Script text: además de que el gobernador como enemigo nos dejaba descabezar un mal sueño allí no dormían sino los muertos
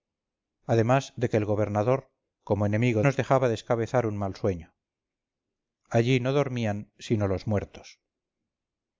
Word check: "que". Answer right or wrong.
right